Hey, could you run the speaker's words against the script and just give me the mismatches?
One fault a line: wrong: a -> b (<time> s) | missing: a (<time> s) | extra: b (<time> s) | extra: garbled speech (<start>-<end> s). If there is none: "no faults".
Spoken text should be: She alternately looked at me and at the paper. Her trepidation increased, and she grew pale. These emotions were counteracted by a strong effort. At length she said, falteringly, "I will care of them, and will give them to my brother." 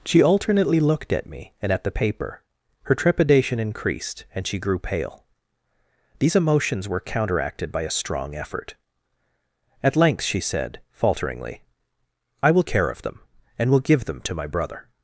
no faults